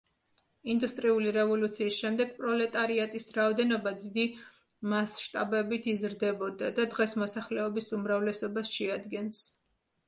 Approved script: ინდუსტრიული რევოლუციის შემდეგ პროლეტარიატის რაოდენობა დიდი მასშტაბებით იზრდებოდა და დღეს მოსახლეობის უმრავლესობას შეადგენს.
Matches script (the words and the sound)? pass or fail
pass